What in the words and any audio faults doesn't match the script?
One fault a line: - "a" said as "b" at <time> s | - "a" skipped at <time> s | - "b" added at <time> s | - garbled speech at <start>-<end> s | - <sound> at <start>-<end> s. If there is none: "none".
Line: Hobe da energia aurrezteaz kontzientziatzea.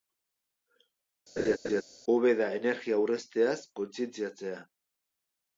- laugh at 1.4-1.8 s